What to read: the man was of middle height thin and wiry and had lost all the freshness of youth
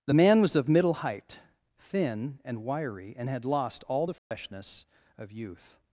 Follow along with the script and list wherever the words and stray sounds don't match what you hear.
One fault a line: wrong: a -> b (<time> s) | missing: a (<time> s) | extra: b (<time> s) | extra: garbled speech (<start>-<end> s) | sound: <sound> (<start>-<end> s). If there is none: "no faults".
sound: dropout (4.2-4.3 s)